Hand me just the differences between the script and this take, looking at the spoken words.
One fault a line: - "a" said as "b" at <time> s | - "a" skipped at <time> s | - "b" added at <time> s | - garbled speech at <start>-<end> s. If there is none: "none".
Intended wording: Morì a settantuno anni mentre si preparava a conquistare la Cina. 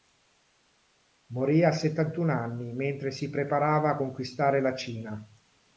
none